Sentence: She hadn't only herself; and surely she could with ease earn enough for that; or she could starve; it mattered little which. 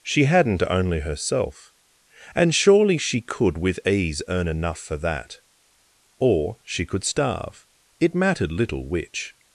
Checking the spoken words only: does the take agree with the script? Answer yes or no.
yes